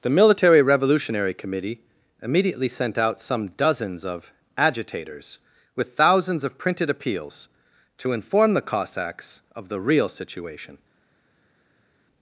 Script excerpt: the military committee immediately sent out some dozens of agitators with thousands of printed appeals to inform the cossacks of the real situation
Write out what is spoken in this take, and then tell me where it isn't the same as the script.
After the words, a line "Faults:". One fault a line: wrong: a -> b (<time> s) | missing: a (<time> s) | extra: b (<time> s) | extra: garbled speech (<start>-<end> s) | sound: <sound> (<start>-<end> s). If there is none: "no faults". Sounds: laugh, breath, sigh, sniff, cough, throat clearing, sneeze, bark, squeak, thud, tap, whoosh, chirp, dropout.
the military revolutionary committee immediately sent out some dozens of agitators with thousands of printed appeals to inform the cossacks of the real situation
Faults:
extra: revolutionary (0.6 s)